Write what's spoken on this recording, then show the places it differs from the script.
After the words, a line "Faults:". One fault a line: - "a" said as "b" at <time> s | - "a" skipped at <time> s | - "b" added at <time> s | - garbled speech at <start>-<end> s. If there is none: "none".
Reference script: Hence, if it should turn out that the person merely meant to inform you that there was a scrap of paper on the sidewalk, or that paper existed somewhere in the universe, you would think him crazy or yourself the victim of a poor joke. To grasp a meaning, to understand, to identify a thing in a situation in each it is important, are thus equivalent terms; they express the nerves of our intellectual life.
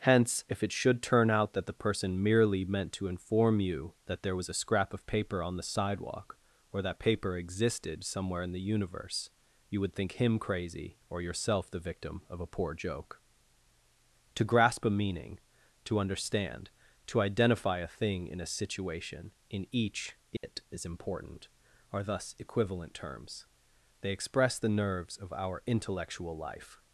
Hence, if it should turn out that the person merely meant to inform you that there was a scrap of paper on the sidewalk, or that paper existed somewhere in the universe, you would think him crazy or yourself the victim of a poor joke. To grasp a meaning, to understand, to identify a thing in a situation in each it is important, are thus equivalent terms; they express the nerves of our intellectual life.
Faults:
none